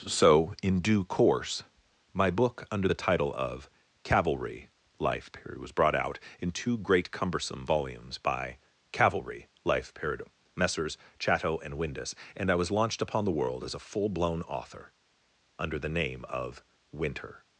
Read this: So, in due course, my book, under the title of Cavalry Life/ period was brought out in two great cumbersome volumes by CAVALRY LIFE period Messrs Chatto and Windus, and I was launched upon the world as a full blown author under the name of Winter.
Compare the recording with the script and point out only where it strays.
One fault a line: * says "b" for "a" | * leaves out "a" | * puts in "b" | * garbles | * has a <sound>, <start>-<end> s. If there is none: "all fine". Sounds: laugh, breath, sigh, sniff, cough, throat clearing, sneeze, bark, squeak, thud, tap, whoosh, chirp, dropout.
all fine